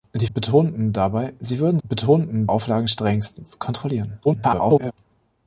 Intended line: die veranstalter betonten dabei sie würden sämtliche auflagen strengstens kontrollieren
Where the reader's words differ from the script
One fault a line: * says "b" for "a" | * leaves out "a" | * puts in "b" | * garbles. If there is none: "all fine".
* leaves out "veranstalter"
* says "betonten" for "sämtliche"
* garbles